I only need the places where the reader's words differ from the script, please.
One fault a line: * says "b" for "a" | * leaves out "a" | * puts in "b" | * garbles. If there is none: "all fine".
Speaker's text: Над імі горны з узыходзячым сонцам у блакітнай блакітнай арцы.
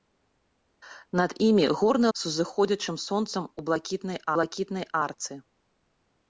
all fine